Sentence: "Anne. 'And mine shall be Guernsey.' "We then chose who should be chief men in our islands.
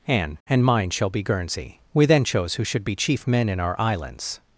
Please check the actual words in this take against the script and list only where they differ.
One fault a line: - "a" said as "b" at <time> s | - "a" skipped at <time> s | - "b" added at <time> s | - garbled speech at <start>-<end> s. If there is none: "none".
none